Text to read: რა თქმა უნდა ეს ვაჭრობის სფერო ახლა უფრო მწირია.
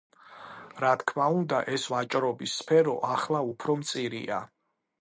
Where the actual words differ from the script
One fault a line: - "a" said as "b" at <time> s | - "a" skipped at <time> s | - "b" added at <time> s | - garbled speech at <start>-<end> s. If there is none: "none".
none